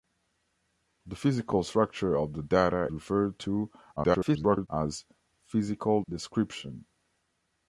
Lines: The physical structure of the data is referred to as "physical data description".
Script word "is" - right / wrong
wrong